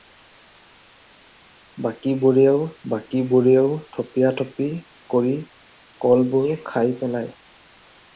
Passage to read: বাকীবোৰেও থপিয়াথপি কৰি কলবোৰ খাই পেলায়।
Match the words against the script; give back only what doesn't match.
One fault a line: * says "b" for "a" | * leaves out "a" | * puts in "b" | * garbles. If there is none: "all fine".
* puts in "বাকীবোৰেও"